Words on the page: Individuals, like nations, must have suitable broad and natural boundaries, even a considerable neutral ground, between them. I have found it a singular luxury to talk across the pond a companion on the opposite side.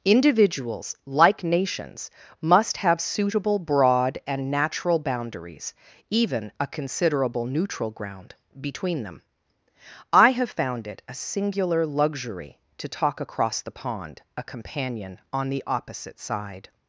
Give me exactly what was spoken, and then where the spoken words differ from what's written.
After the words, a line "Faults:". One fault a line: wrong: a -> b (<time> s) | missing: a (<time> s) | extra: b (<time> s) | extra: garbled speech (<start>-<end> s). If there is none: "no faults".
Individuals, like nations, must have suitable broad and natural boundaries, even a considerable neutral ground, between them. I have found it a singular luxury to talk across the pond a companion on the opposite side.
Faults:
no faults